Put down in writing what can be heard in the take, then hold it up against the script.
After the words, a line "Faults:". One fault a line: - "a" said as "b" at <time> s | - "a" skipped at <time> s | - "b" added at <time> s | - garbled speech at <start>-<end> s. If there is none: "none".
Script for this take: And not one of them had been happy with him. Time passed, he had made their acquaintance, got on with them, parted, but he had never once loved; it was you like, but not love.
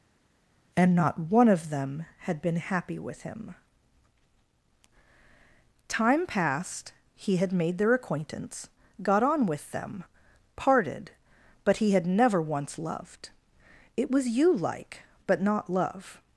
And not one of them had been happy with him. Time passed, he had made their acquaintance, got on with them, parted, but he had never once loved; it was you like, but not love.
Faults:
none